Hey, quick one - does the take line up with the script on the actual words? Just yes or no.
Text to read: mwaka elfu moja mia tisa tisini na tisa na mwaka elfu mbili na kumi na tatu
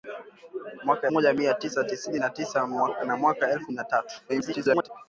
no